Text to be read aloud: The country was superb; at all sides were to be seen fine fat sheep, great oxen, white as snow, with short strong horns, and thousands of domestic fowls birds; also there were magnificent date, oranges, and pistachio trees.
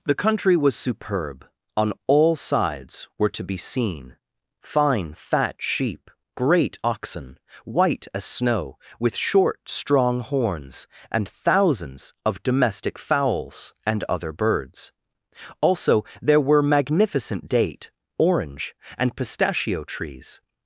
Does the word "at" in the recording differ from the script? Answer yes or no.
yes